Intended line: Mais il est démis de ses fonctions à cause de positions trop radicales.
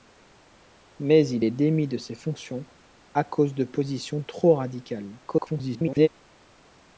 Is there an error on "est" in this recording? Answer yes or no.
no